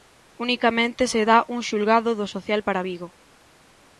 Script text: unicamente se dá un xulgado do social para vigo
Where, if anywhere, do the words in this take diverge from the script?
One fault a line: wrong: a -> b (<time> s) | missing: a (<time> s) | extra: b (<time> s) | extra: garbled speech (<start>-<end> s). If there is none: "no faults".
no faults